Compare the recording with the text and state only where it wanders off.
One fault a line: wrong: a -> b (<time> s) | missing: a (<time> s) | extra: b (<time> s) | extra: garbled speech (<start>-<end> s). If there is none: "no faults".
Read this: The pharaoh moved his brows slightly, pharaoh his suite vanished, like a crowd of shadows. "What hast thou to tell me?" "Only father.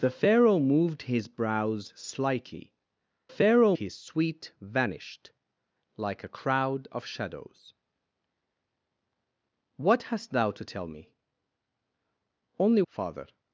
no faults